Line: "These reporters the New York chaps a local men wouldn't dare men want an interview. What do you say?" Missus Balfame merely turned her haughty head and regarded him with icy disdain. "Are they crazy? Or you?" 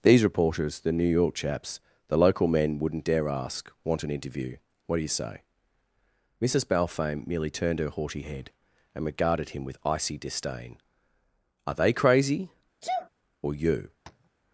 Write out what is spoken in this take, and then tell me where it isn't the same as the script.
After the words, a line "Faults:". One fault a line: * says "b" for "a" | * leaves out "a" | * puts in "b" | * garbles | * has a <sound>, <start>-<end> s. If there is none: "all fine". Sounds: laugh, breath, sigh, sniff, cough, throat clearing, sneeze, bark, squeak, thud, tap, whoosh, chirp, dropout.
"These reporters the New York chaps the local men wouldn't dare ask want an interview. What do you say?" Missus Balfame merely turned her haughty head and regarded him with icy disdain. "Are they crazy? Or you?"
Faults:
* says "the" for "a"
* says "ask" for "men"
* has a sneeze, 12.8-13.1 s
* has a tap, 14.1-14.3 s